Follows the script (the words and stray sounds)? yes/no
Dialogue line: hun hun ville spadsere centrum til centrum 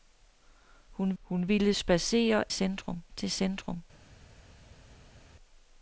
yes